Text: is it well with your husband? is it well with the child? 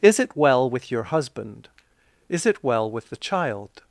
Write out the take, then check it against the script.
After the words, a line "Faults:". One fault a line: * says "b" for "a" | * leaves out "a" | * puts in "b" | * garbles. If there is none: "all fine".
is it well with your husband? is it well with the child?
Faults:
all fine